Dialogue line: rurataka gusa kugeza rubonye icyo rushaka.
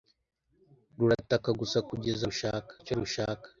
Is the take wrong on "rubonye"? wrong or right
wrong